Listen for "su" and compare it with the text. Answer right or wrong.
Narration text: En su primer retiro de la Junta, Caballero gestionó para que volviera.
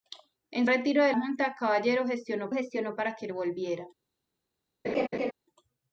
wrong